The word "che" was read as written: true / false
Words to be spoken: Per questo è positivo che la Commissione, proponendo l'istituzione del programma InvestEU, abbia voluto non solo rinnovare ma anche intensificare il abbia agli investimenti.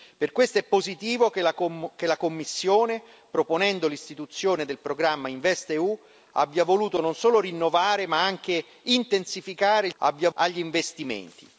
true